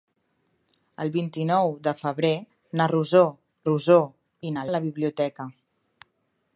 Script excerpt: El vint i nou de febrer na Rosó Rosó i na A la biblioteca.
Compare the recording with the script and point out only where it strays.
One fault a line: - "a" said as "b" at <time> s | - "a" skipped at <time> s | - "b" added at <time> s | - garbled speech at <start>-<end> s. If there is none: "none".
none